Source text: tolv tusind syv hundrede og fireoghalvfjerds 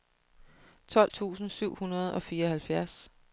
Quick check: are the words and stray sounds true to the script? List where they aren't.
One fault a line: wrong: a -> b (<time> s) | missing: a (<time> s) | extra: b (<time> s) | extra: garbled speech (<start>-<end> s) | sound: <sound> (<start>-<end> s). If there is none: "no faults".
no faults